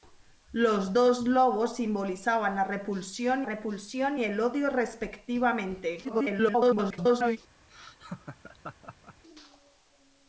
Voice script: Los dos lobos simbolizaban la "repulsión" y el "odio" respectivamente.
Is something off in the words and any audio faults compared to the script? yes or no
yes